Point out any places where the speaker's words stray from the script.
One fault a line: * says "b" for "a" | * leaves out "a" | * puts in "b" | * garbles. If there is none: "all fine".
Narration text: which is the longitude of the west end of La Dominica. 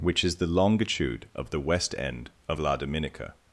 all fine